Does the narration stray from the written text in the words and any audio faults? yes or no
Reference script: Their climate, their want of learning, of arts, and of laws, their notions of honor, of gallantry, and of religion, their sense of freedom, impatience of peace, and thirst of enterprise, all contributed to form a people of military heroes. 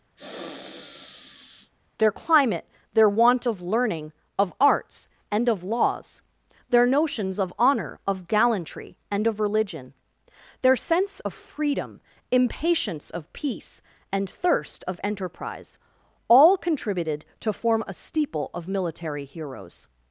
yes